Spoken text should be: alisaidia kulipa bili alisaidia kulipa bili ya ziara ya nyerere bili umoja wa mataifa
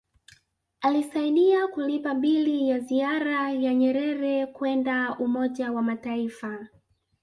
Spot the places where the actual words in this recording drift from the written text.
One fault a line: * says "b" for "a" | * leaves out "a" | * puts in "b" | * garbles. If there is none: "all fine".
* leaves out "alisaidia kulipa bili"
* says "kwenda" for "bili"